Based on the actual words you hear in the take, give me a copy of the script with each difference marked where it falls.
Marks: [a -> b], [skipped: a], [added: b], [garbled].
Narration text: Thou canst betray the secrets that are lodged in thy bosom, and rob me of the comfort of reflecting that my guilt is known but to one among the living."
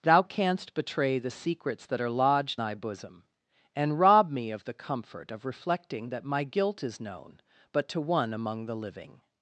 Thou canst betray the secrets that are lodged [skipped: in] thy bosom, and rob me of the comfort of reflecting that my guilt is known but to one among the living."